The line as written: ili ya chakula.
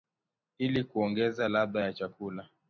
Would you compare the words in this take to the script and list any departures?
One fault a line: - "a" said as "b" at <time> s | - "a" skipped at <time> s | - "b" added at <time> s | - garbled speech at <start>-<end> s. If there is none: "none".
- "kuongeza ladha" added at 0.8 s